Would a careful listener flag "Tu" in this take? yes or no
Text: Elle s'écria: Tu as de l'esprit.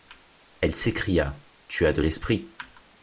no